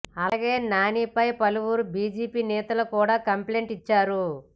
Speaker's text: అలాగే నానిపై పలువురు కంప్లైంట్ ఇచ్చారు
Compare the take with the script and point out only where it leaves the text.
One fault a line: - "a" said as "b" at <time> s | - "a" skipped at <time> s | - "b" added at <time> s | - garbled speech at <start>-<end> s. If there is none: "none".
- "బీజేపీ నేతలు కూడా" added at 1.9 s